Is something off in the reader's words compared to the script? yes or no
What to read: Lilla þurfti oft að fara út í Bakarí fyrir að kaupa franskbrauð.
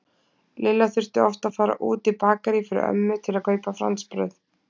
yes